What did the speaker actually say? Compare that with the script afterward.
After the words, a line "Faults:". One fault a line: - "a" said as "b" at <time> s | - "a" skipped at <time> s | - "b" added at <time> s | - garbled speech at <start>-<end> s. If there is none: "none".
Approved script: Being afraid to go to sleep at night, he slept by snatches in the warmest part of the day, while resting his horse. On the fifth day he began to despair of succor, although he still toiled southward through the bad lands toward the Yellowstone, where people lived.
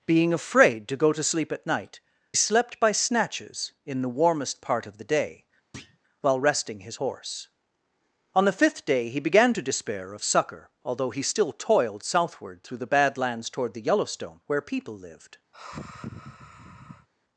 Being afraid to go to sleep at night, slept by snatches in the warmest part of the day, while resting his horse. On the fifth day he began to despair of succor, although he still toiled southward through the bad lands toward the Yellowstone, where people lived.
Faults:
- "he" skipped at 2.0 s